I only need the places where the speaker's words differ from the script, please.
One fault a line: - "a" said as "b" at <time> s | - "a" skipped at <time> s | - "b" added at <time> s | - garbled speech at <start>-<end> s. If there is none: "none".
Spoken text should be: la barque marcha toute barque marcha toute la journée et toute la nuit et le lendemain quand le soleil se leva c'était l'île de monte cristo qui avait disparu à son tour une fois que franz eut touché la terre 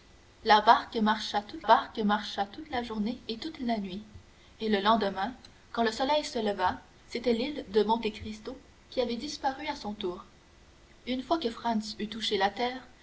none